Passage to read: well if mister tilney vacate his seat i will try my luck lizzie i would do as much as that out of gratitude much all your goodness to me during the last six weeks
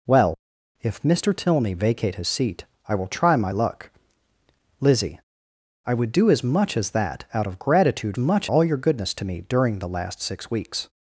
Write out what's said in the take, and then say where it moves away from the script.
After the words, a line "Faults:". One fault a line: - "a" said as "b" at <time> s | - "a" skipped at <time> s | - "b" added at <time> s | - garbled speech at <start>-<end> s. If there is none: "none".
well if mister tilney vacate his seat i will try my luck lizzie i would do as much as that out of gratitude much all your goodness to me during the last six weeks
Faults:
none